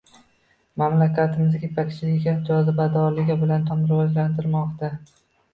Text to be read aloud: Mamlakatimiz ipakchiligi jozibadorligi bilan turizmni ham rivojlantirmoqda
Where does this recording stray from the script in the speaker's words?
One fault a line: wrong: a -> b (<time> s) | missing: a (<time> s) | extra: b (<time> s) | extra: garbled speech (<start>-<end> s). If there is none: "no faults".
missing: turizmni (3.7 s)